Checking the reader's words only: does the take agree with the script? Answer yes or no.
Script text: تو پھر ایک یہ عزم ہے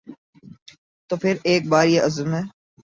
no